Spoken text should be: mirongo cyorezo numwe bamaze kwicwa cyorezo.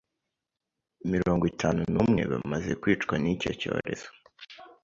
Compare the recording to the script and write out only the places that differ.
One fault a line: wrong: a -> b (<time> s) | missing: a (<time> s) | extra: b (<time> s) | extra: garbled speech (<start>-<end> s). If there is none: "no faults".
wrong: cyorezo -> itanu (1.5 s)
extra: n'icyo (3.2 s)